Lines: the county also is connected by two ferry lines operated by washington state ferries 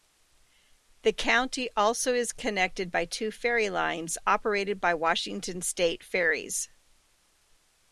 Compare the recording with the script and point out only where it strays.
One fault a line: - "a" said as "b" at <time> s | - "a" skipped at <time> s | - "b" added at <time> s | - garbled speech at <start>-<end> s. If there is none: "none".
none